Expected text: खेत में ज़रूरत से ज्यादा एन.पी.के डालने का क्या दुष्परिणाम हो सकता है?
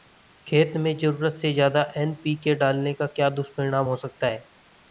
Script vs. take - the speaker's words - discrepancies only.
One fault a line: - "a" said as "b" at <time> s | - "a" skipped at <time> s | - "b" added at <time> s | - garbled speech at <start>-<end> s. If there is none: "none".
none